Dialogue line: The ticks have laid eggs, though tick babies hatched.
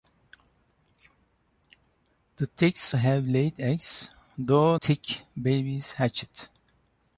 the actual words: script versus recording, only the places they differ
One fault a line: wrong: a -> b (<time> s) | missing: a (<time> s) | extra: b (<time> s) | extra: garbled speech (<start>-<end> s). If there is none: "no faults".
no faults